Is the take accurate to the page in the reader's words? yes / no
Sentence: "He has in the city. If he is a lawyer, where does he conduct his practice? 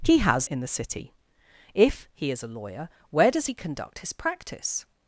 yes